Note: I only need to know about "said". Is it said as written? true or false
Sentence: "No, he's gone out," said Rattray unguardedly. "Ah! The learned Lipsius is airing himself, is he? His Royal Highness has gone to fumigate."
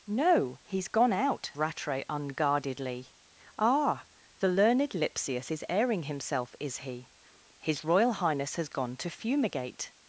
false